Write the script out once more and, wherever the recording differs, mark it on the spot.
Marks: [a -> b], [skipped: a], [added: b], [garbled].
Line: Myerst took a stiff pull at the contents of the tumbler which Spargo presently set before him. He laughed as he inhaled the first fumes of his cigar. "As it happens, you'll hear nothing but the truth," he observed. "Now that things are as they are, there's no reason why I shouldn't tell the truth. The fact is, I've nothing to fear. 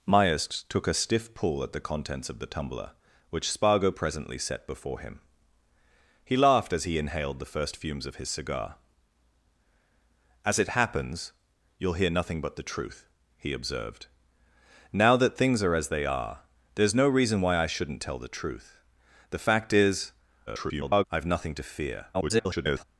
Myerst took a stiff pull at the contents of the tumbler which Spargo presently set before him. He laughed as he inhaled the first fumes of his cigar. "As it happens, you'll hear nothing but the truth," he observed. "Now that things are as they are, there's no reason why I shouldn't tell the truth. The fact is, [garbled] I've nothing to fear. [garbled]